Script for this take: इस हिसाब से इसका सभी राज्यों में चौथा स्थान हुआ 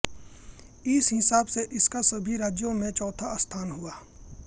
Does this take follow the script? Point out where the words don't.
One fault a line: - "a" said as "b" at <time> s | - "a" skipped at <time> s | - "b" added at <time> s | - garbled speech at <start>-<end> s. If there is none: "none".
none